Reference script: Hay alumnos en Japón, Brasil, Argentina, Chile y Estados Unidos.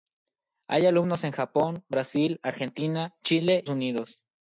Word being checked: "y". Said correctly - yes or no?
no